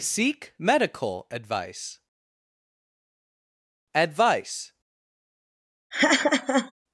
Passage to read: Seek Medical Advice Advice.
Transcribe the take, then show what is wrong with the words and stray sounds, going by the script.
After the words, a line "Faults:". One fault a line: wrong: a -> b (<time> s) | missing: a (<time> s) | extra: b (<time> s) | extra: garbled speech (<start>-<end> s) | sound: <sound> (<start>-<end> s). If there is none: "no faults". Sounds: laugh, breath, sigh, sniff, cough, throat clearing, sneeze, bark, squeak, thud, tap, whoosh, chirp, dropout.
Seek Medical Advice Advice.
Faults:
sound: laugh (5.9-6.7 s)